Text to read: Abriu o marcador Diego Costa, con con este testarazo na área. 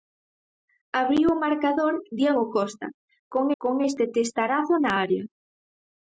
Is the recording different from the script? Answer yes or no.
no